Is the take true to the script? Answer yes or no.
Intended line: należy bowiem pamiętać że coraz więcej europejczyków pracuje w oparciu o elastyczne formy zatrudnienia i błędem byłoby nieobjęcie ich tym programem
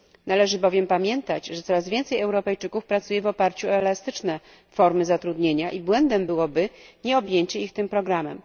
yes